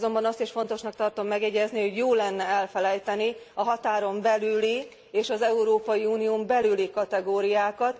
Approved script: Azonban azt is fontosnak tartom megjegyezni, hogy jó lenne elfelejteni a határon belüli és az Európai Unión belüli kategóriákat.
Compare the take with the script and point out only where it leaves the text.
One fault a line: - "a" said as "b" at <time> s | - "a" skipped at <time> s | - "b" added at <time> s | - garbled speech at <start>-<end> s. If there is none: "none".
none